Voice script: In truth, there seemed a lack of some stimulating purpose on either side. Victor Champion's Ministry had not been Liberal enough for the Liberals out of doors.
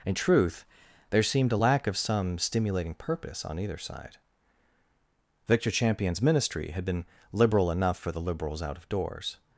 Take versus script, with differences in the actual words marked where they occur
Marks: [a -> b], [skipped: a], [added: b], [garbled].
In truth, there seemed a lack of some stimulating purpose on either side. Victor Champion's Ministry had [skipped: not] been Liberal enough for the Liberals out of doors.